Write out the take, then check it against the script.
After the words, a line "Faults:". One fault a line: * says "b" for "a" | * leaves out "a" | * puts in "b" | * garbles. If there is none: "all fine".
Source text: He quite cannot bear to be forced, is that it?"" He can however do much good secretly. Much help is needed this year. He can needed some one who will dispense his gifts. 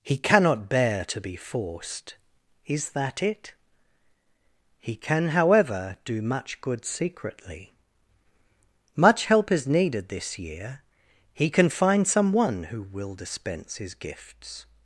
He cannot bear to be forced, is that it?"" He can however do much good secretly. Much help is needed this year. He can find some one who will dispense his gifts.
Faults:
* leaves out "quite"
* says "find" for "needed"